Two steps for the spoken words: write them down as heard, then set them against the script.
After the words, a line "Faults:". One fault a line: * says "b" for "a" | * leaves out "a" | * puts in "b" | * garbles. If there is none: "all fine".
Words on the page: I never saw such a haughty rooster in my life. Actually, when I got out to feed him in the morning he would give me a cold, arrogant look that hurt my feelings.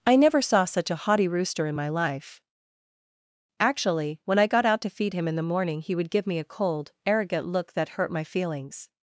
I never saw such a haughty rooster in my life. Actually, when I got out to feed him in the morning he would give me a cold, arrogant look that hurt my feelings.
Faults:
all fine